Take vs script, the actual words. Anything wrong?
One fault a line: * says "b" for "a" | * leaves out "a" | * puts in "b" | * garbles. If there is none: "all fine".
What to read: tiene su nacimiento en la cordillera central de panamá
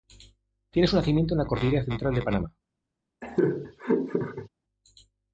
all fine